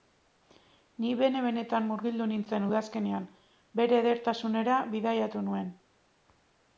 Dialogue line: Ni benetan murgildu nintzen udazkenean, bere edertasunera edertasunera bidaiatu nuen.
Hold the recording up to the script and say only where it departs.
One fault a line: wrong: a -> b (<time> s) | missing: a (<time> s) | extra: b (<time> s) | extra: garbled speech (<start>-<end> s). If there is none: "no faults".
extra: bene (1.2 s)
missing: edertasunera (4.8 s)